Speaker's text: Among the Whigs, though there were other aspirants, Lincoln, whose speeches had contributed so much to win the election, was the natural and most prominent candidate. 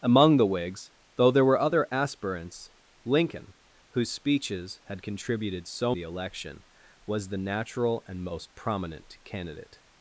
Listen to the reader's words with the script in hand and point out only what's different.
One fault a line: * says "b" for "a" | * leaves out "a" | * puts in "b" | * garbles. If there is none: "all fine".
* leaves out "much to win"